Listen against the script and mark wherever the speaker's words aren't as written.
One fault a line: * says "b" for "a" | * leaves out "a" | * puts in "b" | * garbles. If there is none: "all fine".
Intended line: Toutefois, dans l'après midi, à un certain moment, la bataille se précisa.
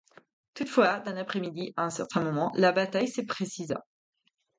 all fine